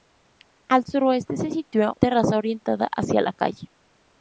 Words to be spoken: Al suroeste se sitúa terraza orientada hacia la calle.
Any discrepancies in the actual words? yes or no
no